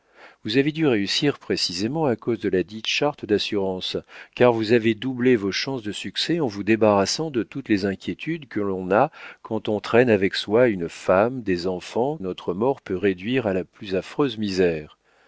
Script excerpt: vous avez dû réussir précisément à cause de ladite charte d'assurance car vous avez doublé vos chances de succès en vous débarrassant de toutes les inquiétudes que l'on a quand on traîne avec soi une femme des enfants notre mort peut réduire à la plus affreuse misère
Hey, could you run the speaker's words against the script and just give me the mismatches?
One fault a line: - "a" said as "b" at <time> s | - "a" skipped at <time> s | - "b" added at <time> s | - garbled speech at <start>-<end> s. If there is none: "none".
none